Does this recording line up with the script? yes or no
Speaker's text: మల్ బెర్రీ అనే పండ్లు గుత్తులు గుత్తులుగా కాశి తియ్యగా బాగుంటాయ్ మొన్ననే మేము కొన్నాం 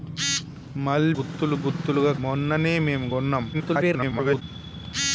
no